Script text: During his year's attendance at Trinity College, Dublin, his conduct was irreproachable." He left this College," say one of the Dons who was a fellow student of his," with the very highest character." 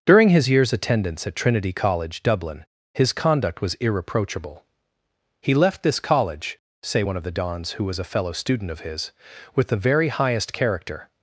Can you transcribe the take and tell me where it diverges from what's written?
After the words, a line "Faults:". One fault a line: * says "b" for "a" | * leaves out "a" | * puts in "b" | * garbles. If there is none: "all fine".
During his year's attendance at Trinity College, Dublin, his conduct was irreproachable." He left this College," say one of the Dons who was a fellow student of his," with the very highest character."
Faults:
all fine